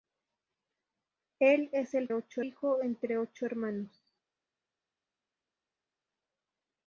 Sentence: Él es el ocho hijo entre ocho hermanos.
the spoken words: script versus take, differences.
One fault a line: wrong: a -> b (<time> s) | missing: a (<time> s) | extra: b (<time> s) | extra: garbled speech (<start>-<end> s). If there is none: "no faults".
no faults